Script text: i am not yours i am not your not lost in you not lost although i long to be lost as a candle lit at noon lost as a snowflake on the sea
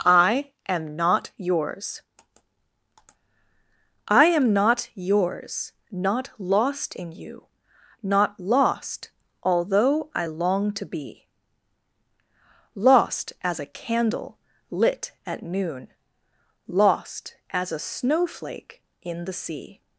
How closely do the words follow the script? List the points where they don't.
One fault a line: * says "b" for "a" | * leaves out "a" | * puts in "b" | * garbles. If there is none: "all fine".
* says "yours" for "your"
* says "in" for "on"